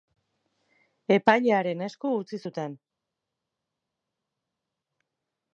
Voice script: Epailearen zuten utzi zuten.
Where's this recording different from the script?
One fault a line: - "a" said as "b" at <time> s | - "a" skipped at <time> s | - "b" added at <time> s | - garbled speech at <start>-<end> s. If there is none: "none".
- "zuten" said as "esku" at 1.9 s